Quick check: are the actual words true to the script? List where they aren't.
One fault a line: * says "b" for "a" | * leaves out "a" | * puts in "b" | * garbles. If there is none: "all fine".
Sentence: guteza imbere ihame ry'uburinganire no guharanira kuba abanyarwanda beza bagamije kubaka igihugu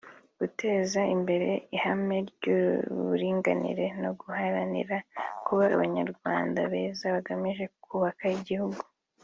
all fine